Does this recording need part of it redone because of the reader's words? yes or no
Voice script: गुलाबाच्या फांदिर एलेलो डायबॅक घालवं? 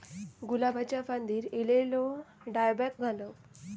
no